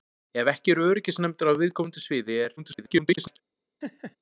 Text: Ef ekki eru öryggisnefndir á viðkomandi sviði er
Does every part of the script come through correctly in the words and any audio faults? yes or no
no